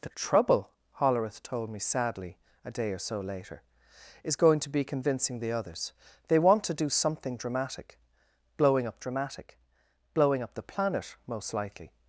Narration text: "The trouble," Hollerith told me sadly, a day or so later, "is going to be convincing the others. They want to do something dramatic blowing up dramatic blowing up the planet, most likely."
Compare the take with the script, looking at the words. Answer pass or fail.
pass